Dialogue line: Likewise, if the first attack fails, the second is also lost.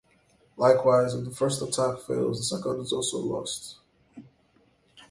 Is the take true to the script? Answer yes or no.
yes